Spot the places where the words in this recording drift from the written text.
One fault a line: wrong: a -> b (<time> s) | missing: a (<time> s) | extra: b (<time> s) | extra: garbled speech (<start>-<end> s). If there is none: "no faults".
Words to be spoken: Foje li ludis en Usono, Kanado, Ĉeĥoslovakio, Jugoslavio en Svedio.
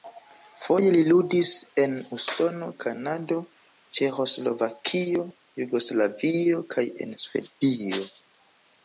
extra: kaj (6.8 s)